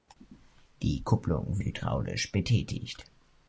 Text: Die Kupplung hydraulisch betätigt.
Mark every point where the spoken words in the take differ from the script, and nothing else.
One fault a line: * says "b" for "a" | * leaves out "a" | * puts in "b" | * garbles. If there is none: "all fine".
all fine